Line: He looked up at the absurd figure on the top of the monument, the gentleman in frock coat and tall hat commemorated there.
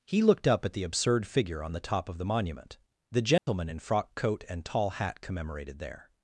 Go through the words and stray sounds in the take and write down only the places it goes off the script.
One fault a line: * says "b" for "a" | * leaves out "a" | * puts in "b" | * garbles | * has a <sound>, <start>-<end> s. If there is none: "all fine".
* has a dropout, 3.4-3.5 s